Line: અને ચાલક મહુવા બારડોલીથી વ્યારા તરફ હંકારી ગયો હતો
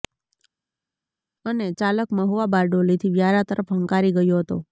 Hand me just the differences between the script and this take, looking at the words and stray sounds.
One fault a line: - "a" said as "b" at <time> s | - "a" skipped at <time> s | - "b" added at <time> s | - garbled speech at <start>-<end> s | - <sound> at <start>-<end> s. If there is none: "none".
none